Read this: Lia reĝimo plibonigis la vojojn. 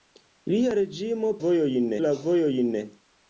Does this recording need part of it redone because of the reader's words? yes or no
yes